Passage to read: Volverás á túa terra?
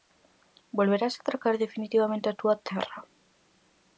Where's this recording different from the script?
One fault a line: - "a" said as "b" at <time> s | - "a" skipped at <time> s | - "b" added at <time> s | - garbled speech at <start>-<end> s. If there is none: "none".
- "atracar definitivamente" added at 1.2 s